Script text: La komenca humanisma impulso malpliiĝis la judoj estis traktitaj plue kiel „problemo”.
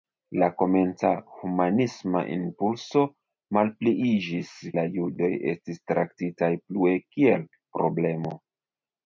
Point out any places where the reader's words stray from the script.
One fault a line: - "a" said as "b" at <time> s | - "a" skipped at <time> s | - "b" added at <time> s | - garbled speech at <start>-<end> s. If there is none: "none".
none